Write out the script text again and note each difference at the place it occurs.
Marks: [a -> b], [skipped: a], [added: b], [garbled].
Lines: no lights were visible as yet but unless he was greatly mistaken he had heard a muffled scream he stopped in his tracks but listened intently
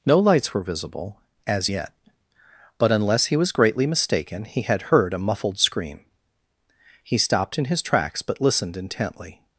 no lights were visible as yet but unless he was greatly mistaken he had heard a muffled scream he stopped in his tracks but listened intently